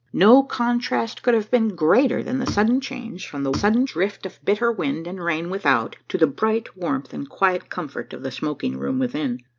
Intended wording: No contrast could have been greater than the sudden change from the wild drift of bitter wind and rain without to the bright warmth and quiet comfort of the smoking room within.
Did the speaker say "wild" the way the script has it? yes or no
no